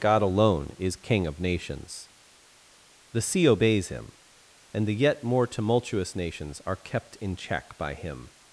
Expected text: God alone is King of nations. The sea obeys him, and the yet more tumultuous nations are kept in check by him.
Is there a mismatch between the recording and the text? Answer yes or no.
no